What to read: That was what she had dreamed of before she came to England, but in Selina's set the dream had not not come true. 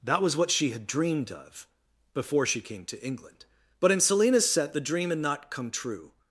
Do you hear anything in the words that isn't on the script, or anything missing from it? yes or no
yes